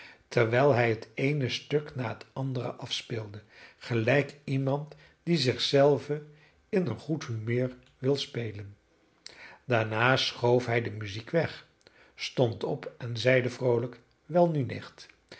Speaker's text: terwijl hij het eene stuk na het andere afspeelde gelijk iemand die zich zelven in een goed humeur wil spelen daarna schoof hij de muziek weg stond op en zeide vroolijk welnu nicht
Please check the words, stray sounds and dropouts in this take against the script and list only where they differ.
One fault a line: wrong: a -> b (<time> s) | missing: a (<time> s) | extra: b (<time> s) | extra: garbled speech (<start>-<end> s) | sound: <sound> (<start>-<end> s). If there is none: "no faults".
no faults